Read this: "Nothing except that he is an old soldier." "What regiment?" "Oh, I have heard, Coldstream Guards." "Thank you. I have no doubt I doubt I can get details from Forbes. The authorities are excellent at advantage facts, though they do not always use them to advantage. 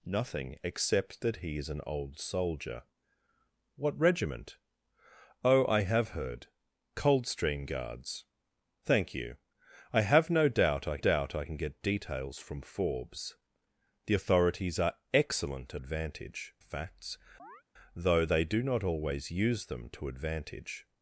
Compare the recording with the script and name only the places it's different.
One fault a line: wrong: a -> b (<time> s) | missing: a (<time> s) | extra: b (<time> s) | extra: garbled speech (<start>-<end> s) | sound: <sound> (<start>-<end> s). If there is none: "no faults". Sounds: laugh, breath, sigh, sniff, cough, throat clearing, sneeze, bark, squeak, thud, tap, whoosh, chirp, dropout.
sound: chirp (17.4-17.6 s)